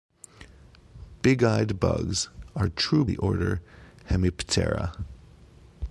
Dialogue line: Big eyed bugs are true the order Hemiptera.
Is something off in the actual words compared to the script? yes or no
no